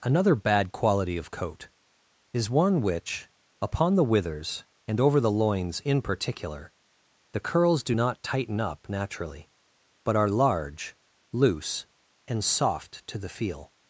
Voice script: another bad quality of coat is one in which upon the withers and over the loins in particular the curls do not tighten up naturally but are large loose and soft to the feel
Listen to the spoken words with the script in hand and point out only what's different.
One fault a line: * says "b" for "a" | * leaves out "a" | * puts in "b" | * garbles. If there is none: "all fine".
* leaves out "in"